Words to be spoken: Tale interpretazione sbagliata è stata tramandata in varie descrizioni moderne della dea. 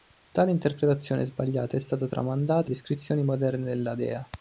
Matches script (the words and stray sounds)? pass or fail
fail